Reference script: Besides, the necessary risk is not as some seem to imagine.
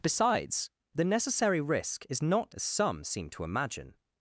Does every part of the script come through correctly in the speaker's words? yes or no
yes